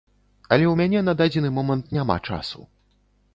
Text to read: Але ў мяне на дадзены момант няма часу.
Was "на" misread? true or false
false